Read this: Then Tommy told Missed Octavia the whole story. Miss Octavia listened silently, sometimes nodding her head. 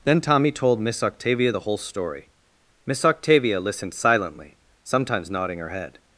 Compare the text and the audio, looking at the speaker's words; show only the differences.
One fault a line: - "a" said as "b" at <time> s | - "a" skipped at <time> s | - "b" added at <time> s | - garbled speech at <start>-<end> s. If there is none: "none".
- "Missed" said as "Miss" at 0.8 s